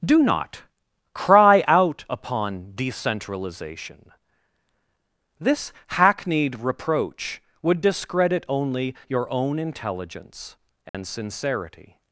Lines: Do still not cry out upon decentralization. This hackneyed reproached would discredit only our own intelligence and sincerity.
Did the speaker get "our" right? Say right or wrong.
wrong